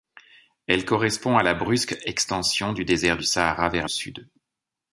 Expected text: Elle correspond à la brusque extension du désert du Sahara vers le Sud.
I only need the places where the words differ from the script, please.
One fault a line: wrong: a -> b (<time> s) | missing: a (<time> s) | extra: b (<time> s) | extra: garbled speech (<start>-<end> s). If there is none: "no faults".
missing: le (3.9 s)